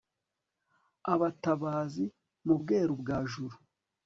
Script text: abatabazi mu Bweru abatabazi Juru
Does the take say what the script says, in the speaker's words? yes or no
no